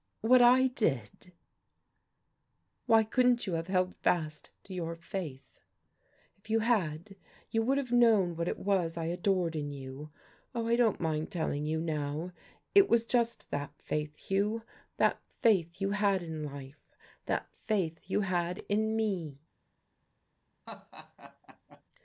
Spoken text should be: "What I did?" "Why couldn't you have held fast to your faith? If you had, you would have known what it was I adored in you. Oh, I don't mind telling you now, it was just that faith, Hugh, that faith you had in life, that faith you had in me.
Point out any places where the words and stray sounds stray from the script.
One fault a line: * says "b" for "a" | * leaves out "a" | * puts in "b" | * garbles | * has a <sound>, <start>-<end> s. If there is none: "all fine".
* has a laugh, 20.7-21.8 s